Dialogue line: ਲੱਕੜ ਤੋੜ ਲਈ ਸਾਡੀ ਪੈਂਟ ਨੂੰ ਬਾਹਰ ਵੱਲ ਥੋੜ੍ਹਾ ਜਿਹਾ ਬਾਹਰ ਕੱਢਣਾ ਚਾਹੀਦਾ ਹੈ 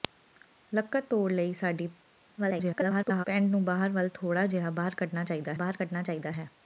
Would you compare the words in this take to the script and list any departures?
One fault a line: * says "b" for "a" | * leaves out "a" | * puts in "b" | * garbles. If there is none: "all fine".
* garbles
* puts in "ਬਾਹਰ ਕੱਢਣਾ ਚਾਹੀਦਾ"